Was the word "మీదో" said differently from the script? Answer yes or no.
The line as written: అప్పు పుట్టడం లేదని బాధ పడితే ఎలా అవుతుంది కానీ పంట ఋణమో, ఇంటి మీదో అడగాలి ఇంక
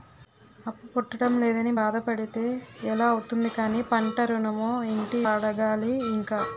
yes